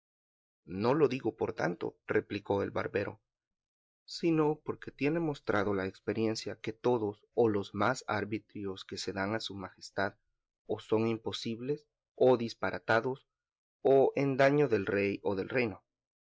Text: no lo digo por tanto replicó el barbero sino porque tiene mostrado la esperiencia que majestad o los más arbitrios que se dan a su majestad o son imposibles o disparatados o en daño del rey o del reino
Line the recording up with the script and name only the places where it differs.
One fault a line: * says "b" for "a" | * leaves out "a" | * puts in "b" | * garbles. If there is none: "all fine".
* says "todos" for "majestad"